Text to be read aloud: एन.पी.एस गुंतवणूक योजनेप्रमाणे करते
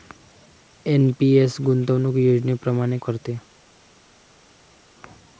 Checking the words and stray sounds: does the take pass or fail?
pass